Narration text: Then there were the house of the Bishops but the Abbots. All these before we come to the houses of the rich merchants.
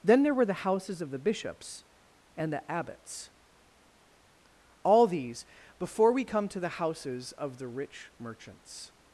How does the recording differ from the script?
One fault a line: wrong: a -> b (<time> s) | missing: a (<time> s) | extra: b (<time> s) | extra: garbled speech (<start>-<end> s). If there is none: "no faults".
wrong: house -> houses (0.5 s)
wrong: but -> and (2.4 s)